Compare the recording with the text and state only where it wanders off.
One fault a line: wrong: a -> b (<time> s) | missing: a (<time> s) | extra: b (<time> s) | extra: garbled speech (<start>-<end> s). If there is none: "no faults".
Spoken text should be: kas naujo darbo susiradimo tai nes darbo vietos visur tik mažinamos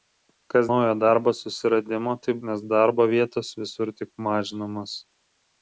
no faults